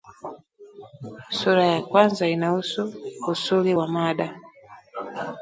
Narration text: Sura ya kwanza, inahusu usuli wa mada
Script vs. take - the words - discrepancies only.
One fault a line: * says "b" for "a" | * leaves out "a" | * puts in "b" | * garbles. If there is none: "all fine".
all fine